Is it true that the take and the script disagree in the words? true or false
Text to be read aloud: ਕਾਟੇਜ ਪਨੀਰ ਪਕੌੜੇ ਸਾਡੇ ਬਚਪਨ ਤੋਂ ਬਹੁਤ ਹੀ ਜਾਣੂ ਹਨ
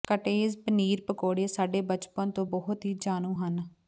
false